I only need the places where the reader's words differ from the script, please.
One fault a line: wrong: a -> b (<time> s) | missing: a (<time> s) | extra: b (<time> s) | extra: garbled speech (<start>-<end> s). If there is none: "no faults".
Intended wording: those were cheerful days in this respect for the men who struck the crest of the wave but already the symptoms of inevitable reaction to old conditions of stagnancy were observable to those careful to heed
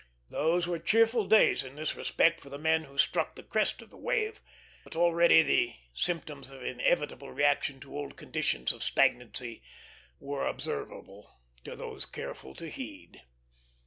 no faults